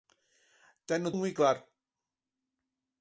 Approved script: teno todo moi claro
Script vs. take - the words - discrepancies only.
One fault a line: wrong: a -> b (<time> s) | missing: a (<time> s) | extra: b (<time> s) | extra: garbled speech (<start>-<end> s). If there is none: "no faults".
missing: todo (1.1 s)